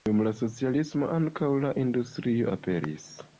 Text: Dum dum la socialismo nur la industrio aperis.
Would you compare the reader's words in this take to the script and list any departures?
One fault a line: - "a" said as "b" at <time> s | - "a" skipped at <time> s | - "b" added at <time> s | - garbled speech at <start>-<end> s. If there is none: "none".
- "dum" skipped at 0.2 s
- "nur" said as "ankaŭ" at 1.2 s